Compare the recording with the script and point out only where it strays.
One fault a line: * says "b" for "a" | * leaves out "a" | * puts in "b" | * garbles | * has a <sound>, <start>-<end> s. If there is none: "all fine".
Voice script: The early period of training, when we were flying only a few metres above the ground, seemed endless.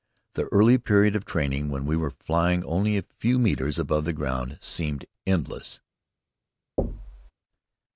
* has a thud, 6.8-7.3 s